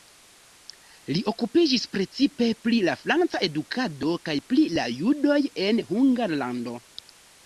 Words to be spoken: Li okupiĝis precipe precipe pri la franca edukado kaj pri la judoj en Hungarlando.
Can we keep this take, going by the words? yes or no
no